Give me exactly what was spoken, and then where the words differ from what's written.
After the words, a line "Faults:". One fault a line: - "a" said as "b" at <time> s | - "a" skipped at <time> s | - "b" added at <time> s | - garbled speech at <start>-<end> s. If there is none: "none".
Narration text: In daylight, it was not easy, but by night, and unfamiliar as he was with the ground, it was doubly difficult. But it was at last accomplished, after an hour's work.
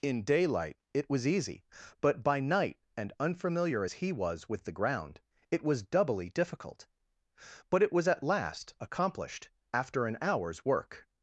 In daylight, it was easy, but by night, and unfamiliar as he was with the ground, it was doubly difficult. But it was at last accomplished, after an hour's work.
Faults:
- "not" skipped at 1.3 s